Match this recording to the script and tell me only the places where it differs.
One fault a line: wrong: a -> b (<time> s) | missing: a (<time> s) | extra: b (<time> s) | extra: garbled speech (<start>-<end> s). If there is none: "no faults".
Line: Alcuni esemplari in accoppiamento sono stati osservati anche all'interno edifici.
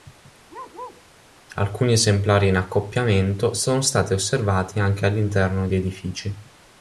extra: di (5.7 s)